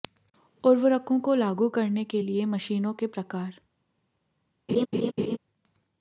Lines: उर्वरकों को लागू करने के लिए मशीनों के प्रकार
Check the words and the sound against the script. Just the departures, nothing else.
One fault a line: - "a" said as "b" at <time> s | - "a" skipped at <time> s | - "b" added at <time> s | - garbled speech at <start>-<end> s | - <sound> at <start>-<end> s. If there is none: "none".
- laugh at 4.7-5.4 s